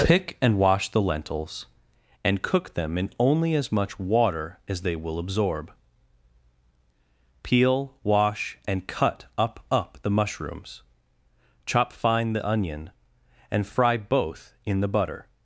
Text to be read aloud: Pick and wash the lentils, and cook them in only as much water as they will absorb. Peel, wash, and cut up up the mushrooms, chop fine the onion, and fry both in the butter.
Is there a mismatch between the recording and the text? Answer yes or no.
no